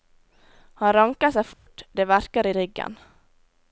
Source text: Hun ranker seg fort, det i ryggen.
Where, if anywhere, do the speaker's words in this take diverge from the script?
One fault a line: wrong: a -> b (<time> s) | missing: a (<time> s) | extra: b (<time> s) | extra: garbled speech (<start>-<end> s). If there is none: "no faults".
wrong: Hun -> Han (0.8 s)
extra: verker (2.1 s)